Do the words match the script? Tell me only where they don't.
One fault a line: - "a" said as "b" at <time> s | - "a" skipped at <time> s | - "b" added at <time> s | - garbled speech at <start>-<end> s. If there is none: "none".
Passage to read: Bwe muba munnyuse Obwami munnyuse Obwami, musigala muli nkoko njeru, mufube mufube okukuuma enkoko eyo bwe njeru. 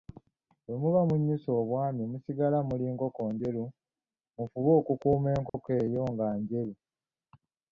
- "munnyuse Obwami" skipped at 2.0 s
- "mufube" skipped at 4.7 s
- "bwe" said as "nga" at 6.1 s